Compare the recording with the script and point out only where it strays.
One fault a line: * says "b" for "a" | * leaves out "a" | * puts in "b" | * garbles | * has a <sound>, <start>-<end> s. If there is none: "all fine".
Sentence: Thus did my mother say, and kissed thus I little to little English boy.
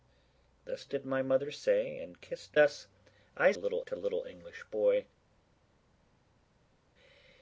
all fine